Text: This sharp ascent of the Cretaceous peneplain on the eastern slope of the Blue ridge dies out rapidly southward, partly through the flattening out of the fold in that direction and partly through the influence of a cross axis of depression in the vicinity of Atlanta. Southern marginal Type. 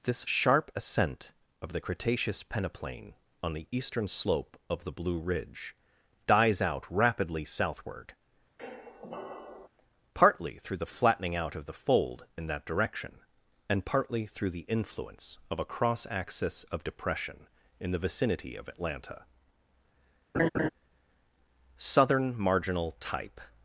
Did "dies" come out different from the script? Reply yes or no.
no